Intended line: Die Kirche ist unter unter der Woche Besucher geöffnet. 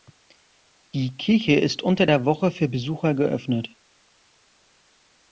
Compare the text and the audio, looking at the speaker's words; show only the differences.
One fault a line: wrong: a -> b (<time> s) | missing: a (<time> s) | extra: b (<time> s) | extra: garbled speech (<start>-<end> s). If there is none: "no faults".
missing: unter (2.1 s)
extra: für (2.5 s)